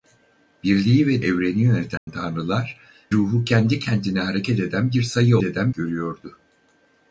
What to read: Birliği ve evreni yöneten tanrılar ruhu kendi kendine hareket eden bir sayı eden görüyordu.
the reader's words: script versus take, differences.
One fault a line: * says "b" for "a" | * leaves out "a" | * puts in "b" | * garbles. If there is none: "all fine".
all fine